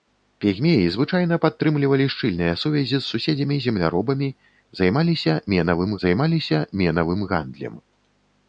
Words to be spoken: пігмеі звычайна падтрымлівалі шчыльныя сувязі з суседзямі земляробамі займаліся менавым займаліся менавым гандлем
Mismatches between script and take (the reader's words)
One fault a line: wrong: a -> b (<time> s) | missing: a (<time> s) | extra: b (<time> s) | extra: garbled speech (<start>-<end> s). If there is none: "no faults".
no faults